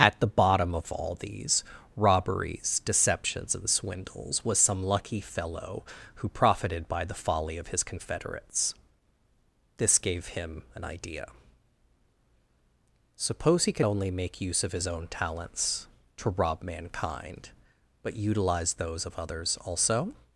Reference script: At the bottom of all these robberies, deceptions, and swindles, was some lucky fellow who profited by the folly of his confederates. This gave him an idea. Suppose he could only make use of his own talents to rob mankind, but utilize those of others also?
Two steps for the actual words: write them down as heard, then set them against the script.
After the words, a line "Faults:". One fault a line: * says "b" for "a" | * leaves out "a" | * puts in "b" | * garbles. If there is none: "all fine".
At the bottom of all these robberies, deceptions, and swindles, was some lucky fellow who profited by the folly of his confederates. This gave him an idea. Suppose he could only make use of his own talents to rob mankind, but utilize those of others also?
Faults:
all fine